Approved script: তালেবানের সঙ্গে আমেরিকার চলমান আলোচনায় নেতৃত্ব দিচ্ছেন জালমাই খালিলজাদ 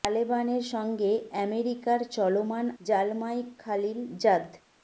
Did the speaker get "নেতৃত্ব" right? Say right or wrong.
wrong